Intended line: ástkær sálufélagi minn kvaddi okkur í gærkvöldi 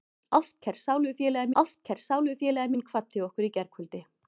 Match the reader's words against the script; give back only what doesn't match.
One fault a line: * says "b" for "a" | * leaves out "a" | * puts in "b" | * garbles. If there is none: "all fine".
* puts in "ástkær sálufélagi"